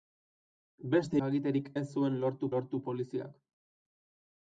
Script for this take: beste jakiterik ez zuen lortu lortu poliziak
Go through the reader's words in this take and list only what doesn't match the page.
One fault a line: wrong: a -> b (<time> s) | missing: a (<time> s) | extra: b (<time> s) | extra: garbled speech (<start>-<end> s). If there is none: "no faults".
no faults